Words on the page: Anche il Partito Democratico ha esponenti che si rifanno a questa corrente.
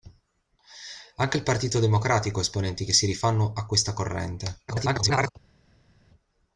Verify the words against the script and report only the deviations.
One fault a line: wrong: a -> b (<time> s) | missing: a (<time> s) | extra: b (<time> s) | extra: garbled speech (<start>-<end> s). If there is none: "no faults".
extra: garbled speech (4.7-5.3 s)